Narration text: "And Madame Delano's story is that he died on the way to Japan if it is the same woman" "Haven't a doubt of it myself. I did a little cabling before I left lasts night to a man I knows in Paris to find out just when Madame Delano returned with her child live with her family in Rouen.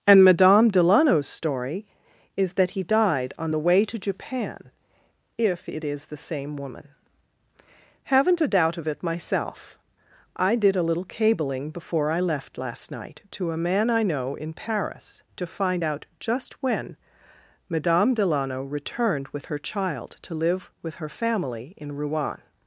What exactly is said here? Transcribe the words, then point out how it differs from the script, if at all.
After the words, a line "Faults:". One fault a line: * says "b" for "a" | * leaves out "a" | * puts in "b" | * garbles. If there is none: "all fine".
"And Madame Delano's story is that he died on the way to Japan if it is the same woman" "Haven't a doubt of it myself. I did a little cabling before I left last night to a man I know in Paris to find out just when Madame Delano returned with her child to live with her family in Rouen.
Faults:
* says "last" for "lasts"
* says "know" for "knows"
* puts in "to"